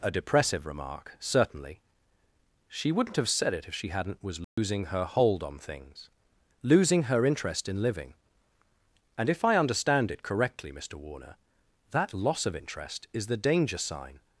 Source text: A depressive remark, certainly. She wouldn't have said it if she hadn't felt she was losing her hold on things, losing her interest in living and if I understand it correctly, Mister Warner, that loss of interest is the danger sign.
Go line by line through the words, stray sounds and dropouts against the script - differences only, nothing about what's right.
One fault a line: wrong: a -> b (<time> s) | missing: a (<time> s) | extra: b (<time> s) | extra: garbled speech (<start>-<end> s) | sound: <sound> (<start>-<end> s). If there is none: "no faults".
missing: felt she (4.2 s)
sound: dropout (4.4-4.6 s)